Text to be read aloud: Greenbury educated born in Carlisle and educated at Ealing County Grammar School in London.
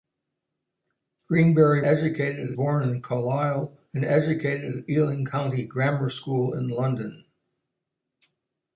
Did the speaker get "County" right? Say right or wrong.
right